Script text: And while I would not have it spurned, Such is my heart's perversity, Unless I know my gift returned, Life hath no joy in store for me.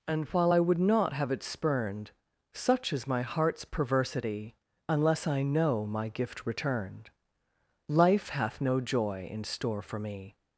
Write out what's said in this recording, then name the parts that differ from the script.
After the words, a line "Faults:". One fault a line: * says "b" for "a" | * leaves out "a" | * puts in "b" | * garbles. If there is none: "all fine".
And while I would not have it spurned, Such is my heart's perversity, Unless I know my gift returned, Life hath no joy in store for me.
Faults:
all fine